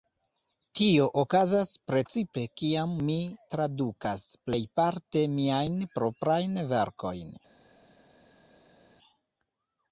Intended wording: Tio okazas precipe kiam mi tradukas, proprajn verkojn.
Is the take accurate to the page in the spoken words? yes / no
no